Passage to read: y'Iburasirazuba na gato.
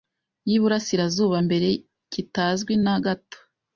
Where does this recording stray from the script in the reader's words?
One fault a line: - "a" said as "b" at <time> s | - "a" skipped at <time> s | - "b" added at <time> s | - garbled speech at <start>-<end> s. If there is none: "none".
- "mbere kitazwi" added at 1.5 s